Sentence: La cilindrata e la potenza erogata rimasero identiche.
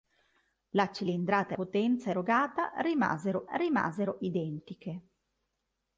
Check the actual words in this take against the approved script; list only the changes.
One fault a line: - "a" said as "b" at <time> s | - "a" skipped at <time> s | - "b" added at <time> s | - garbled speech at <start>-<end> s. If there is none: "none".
- "la" skipped at 1.6 s
- "rimasero" added at 3.5 s